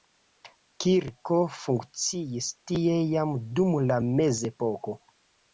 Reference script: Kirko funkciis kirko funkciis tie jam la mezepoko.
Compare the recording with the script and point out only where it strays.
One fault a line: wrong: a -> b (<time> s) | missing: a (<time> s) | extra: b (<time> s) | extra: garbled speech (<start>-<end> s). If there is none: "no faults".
missing: kirko funkciis (2.5 s)
extra: dum (3.6 s)